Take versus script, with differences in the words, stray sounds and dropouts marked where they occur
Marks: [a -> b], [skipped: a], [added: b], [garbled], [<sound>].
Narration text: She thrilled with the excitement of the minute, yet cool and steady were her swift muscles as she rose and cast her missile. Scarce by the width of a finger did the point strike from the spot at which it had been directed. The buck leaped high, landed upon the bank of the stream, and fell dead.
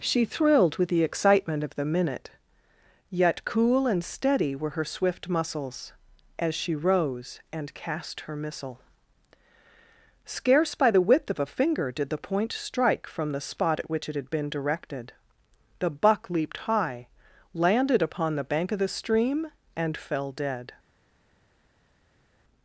She thrilled with the excitement of the minute, yet cool and steady were her swift muscles as she rose and cast her missile. Scarce by the width of a finger did the point strike from the spot at which it had been directed. The buck leaped high, landed upon the bank of the stream, and fell dead.